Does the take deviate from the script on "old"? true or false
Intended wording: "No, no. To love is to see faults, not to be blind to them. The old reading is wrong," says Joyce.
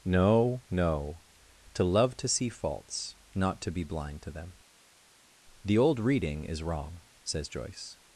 false